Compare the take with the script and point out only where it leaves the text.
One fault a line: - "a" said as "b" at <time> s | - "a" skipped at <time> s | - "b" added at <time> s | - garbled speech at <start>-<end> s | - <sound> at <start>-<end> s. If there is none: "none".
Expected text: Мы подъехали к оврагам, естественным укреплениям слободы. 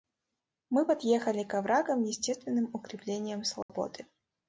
- dropout at 3.6-3.7 s